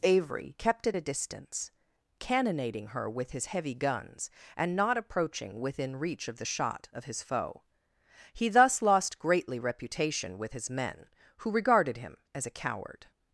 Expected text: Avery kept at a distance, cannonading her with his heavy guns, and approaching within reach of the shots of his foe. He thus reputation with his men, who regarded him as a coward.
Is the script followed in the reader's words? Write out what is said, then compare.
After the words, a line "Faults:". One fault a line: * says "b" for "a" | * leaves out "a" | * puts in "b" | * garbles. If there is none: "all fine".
Avery kept at a distance, cannonading her with his heavy guns, and not approaching within reach of the shot of his foe. He thus lost greatly reputation with his men, who regarded him as a coward.
Faults:
* puts in "not"
* says "shot" for "shots"
* puts in "lost greatly"